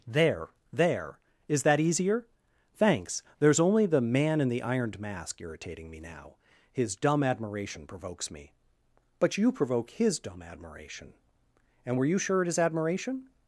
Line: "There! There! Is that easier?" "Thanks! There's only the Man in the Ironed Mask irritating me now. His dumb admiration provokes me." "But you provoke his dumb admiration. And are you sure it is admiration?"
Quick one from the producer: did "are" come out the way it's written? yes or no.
no